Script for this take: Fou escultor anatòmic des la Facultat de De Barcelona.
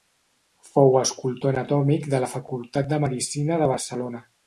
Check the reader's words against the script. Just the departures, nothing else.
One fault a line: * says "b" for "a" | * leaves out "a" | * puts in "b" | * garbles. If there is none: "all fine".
* says "de" for "des"
* puts in "Medicina"